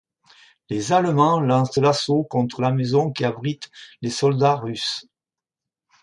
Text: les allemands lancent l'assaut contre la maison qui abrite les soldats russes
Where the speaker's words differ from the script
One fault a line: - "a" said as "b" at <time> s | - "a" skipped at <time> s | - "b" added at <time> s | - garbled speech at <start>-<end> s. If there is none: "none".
none